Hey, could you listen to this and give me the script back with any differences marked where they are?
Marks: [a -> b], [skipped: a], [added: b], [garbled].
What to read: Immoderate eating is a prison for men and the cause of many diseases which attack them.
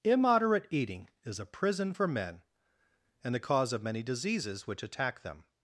Immoderate eating is a prison for men and the cause of many diseases which attack them.